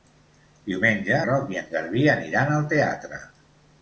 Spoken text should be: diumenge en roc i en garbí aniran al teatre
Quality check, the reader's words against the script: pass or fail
fail